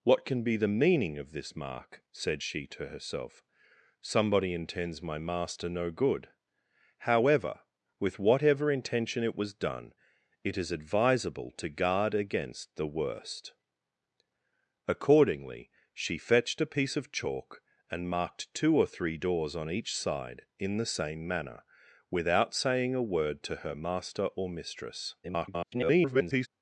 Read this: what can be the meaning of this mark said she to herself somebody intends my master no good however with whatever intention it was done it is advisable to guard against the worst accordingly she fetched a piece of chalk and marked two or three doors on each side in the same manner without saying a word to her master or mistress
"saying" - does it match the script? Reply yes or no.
yes